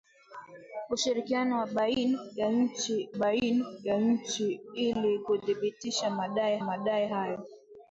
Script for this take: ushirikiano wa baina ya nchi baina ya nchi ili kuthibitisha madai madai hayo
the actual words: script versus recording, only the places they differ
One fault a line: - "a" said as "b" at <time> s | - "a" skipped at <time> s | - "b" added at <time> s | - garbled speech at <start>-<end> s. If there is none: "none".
none